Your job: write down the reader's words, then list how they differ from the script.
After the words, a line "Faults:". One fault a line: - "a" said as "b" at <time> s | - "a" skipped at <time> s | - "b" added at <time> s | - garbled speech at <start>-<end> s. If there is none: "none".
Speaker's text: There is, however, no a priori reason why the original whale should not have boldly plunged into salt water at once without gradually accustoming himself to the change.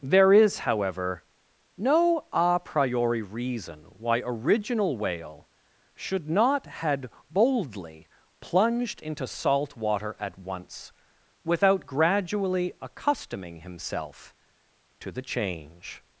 There is, however, no a priori reason why original whale should not had boldly plunged into salt water at once without gradually accustoming himself to the change.
Faults:
- "the" skipped at 4.2 s
- "have" said as "had" at 6.7 s